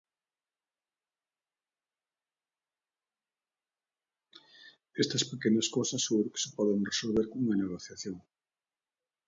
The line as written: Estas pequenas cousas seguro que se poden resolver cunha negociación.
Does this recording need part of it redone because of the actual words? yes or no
no